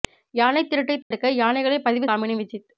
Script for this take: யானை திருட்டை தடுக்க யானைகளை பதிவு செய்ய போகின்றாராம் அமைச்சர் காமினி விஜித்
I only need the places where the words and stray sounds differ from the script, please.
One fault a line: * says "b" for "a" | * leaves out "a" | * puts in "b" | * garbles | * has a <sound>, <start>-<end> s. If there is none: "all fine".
* has a dropout, 1.0-1.1 s
* leaves out "செய்ய போகின்றாராம் அமைச்சர்"